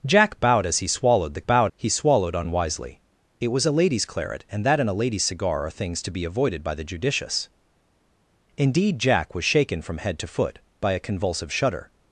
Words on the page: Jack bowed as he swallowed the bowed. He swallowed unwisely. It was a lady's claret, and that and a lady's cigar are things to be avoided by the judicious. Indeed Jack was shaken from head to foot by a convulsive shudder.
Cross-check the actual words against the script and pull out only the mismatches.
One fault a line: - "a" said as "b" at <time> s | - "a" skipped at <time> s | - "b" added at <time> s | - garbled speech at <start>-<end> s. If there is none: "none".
none